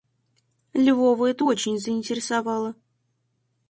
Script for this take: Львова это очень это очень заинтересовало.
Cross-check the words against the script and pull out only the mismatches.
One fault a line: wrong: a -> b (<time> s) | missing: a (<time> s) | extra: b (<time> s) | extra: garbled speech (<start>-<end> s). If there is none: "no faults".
missing: это очень (1.8 s)